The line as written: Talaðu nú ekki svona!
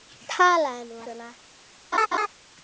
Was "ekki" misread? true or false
true